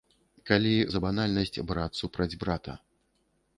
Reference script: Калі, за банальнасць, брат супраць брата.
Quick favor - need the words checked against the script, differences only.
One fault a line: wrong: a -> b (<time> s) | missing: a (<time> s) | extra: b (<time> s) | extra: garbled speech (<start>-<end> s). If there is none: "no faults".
no faults